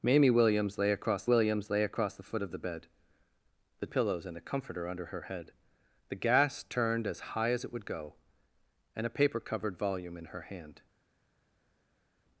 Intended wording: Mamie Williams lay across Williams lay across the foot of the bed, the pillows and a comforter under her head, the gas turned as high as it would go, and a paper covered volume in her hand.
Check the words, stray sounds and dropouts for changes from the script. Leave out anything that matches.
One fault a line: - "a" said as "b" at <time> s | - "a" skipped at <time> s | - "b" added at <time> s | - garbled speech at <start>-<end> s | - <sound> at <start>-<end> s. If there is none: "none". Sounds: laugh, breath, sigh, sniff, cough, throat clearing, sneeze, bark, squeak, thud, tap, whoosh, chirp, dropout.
none